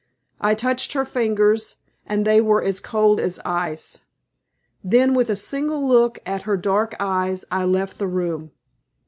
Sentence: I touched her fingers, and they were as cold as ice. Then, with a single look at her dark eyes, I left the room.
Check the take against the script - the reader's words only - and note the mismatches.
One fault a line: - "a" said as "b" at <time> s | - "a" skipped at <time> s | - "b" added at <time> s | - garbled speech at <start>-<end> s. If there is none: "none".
none